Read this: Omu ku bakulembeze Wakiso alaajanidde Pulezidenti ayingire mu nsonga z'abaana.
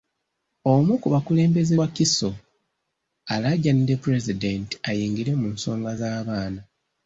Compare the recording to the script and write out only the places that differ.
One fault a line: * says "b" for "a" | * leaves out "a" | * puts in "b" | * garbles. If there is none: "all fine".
all fine